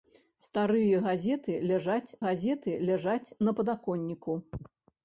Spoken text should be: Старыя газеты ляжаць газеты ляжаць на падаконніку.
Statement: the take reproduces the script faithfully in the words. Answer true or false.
true